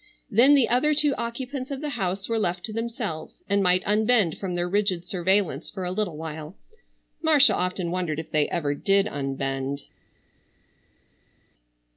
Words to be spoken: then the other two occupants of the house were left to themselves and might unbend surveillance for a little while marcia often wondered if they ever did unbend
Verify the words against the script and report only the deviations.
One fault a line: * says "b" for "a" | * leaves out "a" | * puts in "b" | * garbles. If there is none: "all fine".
* puts in "from their rigid"